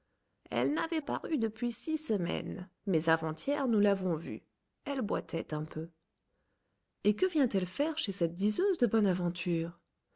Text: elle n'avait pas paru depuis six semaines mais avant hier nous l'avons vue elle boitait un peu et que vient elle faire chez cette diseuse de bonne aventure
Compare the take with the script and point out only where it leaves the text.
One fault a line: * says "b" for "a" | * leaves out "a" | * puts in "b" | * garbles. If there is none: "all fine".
* leaves out "pas"